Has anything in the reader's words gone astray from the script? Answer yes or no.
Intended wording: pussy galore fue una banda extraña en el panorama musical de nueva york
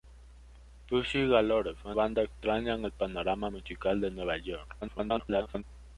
yes